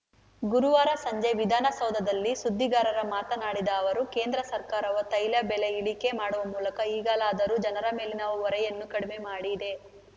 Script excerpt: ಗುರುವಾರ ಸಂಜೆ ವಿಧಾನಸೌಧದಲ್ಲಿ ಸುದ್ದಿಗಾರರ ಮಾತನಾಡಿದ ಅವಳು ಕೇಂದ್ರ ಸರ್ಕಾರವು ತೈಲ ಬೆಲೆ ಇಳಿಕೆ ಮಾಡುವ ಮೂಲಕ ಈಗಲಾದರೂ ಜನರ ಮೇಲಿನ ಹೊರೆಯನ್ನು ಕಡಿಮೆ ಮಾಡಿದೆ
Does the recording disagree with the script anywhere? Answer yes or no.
yes